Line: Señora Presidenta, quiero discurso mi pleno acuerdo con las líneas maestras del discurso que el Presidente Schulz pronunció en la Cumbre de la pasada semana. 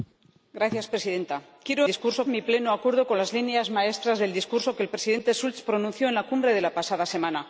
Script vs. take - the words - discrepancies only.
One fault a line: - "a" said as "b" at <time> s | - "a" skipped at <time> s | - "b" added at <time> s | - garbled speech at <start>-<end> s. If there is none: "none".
none